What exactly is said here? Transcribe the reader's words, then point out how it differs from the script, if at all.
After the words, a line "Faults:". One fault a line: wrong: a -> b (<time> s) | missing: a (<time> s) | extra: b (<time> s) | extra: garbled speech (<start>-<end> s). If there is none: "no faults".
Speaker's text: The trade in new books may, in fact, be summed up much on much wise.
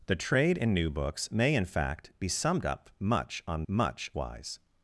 The trade in new books may, in fact, be summed up much on much wise.
Faults:
no faults